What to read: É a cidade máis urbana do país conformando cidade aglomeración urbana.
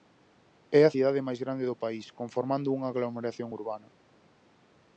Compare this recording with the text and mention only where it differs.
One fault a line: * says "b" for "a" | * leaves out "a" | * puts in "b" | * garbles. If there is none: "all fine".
* says "grande" for "urbana"
* says "unha" for "cidade"